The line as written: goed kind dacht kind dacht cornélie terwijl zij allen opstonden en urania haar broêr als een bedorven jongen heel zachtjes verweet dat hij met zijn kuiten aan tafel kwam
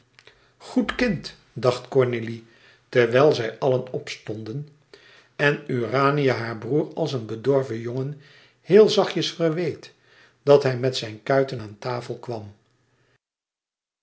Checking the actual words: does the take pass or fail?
fail